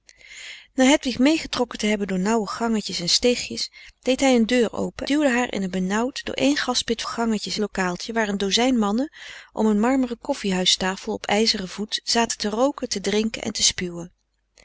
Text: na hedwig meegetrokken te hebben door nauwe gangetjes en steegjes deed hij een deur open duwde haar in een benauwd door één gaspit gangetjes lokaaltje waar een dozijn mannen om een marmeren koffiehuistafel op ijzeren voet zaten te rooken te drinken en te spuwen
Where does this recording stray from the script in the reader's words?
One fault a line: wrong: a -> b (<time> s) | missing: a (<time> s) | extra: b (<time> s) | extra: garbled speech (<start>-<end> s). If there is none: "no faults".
no faults